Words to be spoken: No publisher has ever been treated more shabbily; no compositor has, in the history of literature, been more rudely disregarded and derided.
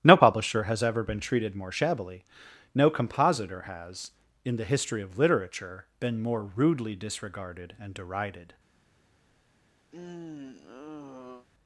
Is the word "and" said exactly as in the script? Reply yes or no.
yes